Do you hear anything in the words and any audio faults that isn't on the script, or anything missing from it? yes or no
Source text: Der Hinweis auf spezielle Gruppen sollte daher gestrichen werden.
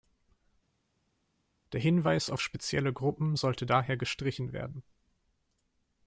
no